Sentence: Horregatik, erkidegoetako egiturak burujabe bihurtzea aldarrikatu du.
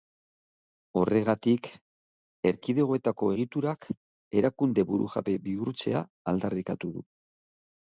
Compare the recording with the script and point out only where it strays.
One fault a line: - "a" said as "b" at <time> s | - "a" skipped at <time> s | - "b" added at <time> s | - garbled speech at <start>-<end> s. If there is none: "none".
- "erakunde" added at 4.4 s